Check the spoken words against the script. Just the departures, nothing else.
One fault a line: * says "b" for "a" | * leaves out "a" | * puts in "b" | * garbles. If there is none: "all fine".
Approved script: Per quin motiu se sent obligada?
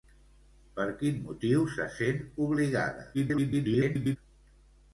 * garbles